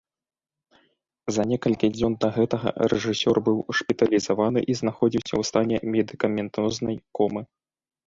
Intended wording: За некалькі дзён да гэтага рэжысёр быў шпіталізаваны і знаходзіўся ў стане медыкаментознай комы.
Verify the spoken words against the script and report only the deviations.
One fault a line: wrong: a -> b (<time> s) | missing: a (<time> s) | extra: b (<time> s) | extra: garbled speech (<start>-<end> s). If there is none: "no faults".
no faults